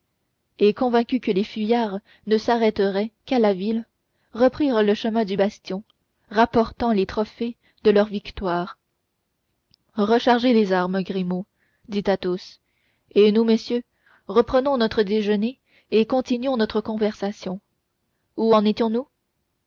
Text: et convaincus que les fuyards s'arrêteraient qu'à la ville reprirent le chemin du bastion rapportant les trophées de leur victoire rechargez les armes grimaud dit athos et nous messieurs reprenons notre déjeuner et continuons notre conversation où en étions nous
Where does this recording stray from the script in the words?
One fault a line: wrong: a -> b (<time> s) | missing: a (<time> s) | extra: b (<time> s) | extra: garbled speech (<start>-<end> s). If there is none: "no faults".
extra: ne (2.2 s)